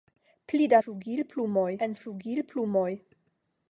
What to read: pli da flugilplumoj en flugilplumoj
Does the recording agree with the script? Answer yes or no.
yes